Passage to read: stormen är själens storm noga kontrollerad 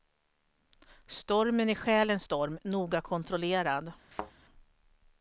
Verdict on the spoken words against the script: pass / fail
pass